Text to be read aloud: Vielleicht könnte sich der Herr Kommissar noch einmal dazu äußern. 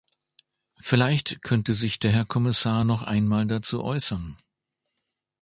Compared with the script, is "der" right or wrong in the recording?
right